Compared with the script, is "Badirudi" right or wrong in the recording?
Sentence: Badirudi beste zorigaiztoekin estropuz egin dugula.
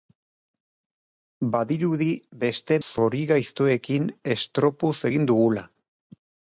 right